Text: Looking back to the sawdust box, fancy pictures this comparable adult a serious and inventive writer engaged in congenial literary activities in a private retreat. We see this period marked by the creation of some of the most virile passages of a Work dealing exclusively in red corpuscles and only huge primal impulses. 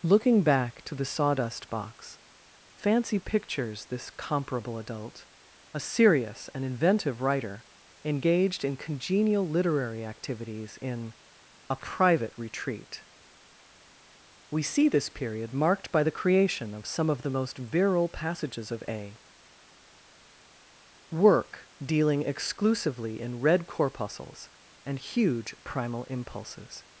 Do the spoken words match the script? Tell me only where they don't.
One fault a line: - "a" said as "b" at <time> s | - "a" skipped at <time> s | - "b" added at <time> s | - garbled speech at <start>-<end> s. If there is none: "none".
- "only" skipped at 25.0 s